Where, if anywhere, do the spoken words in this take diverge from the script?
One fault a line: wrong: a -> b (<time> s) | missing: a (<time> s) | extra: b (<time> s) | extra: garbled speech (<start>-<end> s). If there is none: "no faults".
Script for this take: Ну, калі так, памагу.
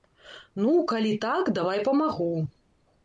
extra: давай (1.6 s)